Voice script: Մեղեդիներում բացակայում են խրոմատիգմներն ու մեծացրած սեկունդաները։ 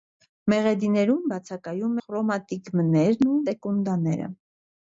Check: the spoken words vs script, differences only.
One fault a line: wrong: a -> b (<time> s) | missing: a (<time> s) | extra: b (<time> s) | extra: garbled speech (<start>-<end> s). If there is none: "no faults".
missing: են (2.0 s)
missing: մեծացրած (3.4 s)